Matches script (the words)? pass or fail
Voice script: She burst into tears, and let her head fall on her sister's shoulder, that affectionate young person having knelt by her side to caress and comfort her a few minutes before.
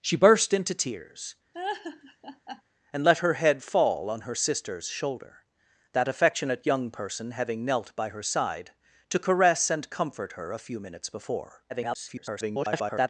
fail